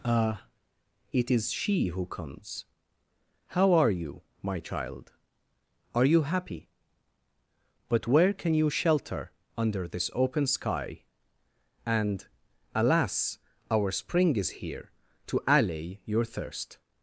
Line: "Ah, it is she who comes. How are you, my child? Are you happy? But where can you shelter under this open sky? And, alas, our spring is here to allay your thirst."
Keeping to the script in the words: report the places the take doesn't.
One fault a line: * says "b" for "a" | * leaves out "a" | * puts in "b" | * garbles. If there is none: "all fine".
all fine